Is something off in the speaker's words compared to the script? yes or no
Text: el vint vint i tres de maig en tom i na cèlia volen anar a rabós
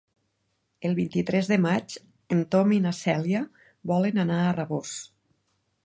yes